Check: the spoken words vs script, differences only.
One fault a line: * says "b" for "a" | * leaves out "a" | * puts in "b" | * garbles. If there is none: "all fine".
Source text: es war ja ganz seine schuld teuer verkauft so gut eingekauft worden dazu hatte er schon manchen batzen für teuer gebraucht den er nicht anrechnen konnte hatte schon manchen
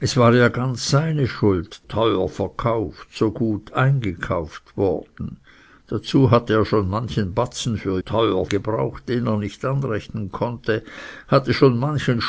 all fine